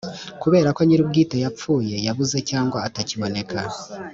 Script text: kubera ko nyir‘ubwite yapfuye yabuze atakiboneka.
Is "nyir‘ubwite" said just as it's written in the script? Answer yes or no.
yes